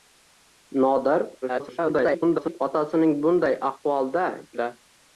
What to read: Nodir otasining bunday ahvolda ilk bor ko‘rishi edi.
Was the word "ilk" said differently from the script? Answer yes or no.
yes